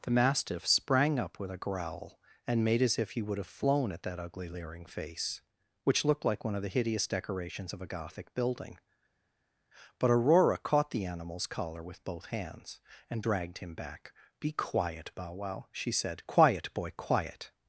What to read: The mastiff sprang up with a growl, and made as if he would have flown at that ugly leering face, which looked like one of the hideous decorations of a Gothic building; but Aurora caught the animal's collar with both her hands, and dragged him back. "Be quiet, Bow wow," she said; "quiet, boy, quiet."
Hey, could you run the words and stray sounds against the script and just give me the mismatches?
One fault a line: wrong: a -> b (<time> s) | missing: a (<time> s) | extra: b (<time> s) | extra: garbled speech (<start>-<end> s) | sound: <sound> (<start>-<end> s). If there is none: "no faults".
missing: her (12.3 s)